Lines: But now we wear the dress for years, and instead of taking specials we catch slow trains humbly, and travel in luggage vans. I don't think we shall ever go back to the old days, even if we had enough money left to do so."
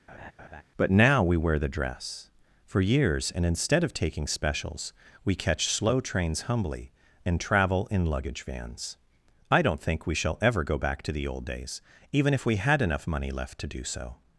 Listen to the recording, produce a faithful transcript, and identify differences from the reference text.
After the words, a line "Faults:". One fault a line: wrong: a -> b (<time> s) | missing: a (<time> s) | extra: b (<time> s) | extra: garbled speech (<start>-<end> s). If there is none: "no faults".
But now we wear the dress for years, and instead of taking specials we catch slow trains humbly, and travel in luggage vans. I don't think we shall ever go back to the old days, even if we had enough money left to do so."
Faults:
no faults